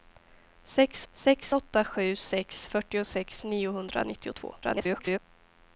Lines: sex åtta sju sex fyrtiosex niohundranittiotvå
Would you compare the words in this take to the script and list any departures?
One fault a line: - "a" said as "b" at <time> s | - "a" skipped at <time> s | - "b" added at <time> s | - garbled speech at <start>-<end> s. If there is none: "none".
- "sex" added at 1.1 s
- garbled speech at 4.6-5.2 s